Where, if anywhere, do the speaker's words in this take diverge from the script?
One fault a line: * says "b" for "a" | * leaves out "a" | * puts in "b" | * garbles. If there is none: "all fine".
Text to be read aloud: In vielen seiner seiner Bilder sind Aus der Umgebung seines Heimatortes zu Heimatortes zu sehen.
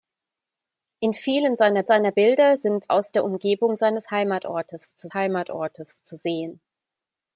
all fine